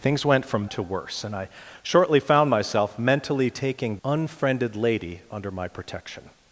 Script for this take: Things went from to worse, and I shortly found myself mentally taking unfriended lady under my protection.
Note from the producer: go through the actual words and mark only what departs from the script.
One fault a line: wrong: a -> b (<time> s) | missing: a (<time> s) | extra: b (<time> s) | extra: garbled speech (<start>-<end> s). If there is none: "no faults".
no faults